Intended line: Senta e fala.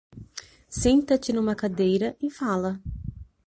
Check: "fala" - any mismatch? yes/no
no